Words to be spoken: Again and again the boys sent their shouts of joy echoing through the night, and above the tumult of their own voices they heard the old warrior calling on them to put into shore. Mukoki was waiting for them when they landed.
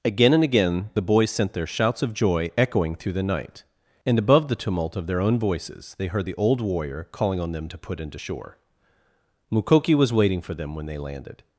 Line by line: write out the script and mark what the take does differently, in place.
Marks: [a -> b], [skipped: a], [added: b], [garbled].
Again and again the boys sent their shouts of joy echoing through the night, and above the tumult of their own voices they heard the old warrior calling on them to put into shore. Mukoki was waiting for them when they landed.